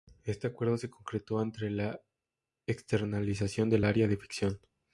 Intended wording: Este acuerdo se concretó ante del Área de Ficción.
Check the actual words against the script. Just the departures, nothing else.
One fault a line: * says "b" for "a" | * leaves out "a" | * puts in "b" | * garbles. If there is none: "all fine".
* puts in "la externalización"